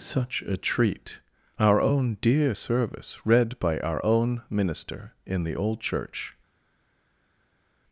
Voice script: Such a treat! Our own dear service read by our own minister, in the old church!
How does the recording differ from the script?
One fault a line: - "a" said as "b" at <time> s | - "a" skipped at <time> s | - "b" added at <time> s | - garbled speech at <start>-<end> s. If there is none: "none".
none